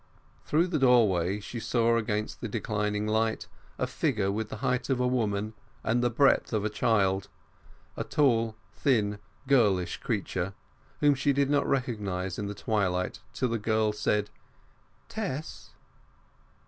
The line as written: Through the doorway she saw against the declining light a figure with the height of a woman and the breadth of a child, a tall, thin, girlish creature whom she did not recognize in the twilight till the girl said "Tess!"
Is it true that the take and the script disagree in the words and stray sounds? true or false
false